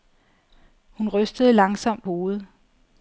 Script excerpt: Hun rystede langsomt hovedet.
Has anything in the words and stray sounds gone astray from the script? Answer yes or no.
no